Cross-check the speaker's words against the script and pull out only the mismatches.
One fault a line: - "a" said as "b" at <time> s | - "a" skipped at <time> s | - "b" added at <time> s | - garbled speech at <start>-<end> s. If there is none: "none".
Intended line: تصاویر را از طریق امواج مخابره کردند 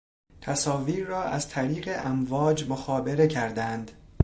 none